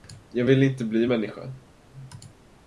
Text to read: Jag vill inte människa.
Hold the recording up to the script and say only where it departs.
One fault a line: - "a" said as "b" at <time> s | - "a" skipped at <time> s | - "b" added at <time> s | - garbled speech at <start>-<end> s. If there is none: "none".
- "bli" added at 0.8 s